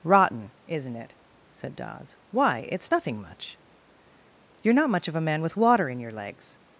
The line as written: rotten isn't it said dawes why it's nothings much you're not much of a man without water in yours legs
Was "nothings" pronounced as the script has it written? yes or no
no